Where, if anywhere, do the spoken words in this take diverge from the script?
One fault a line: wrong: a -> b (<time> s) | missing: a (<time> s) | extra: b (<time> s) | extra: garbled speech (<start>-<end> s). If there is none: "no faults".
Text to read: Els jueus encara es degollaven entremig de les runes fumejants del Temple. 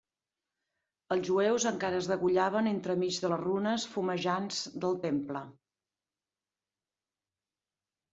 no faults